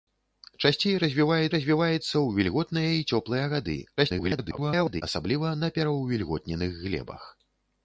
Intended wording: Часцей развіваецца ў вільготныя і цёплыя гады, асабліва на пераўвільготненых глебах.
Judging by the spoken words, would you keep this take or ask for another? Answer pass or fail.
fail